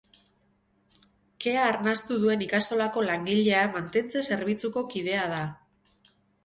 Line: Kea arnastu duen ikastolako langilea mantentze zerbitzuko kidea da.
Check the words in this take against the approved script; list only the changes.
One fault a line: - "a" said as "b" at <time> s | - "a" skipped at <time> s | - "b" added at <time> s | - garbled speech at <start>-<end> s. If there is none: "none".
none